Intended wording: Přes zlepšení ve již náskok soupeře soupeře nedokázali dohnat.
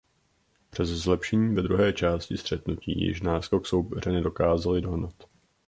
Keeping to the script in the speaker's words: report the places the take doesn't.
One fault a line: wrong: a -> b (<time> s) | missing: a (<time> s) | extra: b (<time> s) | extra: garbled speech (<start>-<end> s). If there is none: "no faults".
extra: druhé části střetnutí (1.6 s)
missing: soupeře (4.1 s)